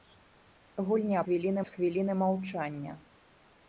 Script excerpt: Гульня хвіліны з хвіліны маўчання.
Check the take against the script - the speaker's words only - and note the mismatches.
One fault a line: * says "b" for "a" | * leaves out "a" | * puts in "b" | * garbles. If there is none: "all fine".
all fine